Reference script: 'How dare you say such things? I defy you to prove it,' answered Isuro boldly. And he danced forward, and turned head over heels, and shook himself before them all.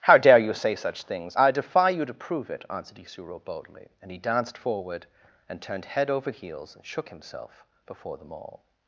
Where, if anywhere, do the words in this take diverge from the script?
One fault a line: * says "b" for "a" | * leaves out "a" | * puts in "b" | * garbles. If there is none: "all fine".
all fine